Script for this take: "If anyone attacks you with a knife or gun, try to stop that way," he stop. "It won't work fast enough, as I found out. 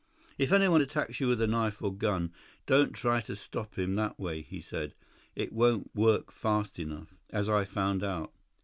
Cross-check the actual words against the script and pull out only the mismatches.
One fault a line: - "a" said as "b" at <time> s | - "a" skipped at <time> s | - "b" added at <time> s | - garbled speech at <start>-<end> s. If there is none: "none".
- "don't" added at 2.7 s
- "him" added at 3.8 s
- "stop" said as "said" at 4.6 s